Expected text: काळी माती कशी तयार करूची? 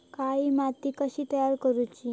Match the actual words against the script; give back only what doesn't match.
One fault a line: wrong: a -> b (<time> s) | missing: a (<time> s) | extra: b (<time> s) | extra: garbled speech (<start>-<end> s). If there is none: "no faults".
no faults